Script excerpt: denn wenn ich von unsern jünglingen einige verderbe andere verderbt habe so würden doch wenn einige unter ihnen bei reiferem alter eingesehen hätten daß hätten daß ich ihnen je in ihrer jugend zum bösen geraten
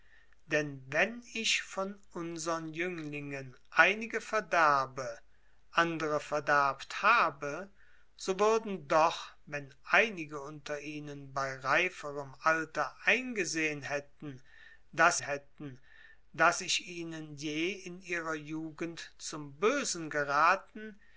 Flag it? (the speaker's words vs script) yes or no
no